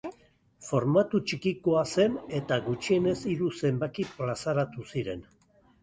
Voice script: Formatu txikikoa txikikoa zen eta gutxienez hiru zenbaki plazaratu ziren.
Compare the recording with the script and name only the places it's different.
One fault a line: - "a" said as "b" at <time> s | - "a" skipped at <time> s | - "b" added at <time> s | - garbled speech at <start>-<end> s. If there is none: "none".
- "txikikoa" skipped at 1.8 s